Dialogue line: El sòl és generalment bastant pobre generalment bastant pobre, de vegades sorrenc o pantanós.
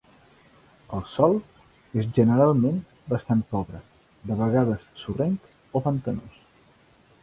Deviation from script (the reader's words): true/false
true